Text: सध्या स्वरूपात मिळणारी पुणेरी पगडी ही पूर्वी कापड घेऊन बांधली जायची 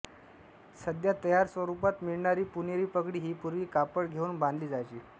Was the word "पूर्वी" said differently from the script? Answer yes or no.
no